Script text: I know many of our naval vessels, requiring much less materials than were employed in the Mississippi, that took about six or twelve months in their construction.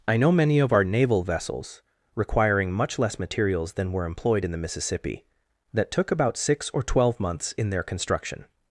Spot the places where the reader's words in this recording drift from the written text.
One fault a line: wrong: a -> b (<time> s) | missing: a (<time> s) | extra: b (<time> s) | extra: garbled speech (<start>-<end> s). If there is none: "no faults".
no faults